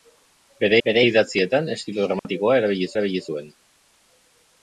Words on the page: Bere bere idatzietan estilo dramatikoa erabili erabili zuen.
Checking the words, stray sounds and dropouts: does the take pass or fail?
fail